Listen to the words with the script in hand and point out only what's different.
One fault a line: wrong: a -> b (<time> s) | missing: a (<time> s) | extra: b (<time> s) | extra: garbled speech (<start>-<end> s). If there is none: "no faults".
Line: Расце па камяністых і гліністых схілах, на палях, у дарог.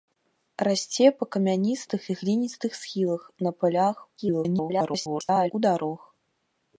extra: garbled speech (4.2-5.5 s)